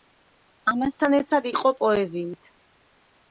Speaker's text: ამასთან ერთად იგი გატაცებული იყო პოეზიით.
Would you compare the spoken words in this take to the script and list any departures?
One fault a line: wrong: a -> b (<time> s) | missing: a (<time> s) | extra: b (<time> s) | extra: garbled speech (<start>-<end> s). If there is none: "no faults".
missing: იგი გატაცებული (1.5 s)